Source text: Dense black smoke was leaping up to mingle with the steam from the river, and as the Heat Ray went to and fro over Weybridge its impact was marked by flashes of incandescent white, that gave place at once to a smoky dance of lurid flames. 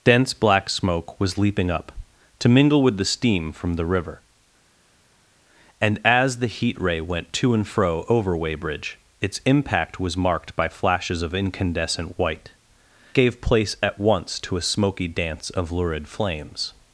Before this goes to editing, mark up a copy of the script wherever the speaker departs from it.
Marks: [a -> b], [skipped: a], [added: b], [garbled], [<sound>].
Dense black smoke was leaping up to mingle with the steam from the river, and as the Heat Ray went to and fro over Weybridge its impact was marked by flashes of incandescent white, [skipped: that] gave place at once to a smoky dance of lurid flames.